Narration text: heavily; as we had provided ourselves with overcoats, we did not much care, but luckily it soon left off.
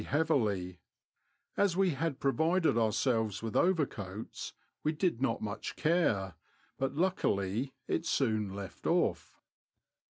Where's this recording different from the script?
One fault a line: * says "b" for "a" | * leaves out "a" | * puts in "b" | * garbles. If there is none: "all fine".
all fine